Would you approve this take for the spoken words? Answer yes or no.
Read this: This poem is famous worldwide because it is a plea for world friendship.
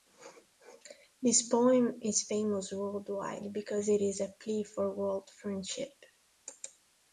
yes